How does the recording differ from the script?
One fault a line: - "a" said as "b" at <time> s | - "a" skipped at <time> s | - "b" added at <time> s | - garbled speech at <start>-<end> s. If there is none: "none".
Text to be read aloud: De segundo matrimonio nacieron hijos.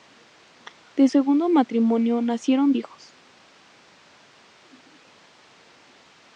none